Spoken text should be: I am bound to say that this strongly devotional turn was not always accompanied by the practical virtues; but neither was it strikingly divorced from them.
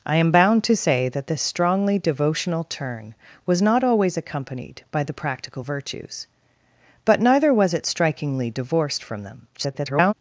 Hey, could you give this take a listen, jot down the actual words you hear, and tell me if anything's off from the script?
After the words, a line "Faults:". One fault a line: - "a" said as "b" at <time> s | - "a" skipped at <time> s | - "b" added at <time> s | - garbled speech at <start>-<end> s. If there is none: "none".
I am bound to say that this strongly devotional turn was not always accompanied by the practical virtues; but neither was it strikingly divorced from them. [garbled]
Faults:
- garbled speech at 9.5-10.1 s